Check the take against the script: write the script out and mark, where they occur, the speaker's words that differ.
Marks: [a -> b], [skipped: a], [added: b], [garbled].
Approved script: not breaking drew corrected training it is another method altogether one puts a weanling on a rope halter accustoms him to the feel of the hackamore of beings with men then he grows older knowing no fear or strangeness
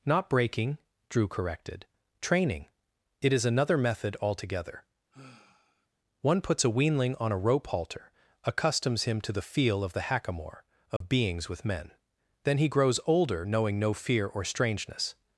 not breaking drew corrected training it is another method altogether one puts a weanling on a rope halter accustoms him to the feel of the hackamore of beings with men then he grows older knowing no fear or strangeness